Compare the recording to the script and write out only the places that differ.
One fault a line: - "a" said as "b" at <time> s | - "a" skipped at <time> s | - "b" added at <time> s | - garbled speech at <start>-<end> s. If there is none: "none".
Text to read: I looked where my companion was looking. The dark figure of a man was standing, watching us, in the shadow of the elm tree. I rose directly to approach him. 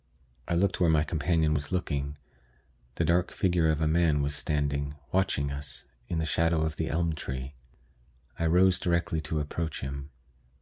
none